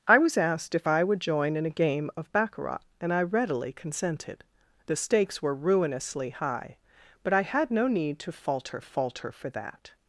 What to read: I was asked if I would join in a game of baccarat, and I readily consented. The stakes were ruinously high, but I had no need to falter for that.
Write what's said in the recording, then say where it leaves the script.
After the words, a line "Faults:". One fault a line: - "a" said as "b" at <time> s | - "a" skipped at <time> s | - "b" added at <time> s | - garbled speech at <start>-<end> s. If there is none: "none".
I was asked if I would join in a game of baccarat, and I readily consented. The stakes were ruinously high, but I had no need to falter falter for that.
Faults:
- "falter" added at 8.8 s